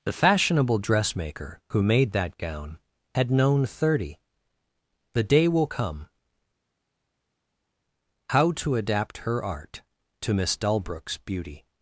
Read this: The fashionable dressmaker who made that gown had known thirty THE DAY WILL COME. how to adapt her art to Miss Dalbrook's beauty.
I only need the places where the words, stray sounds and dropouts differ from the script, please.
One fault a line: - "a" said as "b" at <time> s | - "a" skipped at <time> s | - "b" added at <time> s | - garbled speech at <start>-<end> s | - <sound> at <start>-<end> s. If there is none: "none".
none